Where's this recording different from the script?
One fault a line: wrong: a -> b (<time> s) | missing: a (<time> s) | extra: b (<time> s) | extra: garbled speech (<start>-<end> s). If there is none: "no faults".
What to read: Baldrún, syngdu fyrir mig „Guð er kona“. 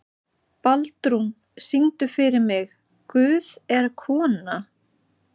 no faults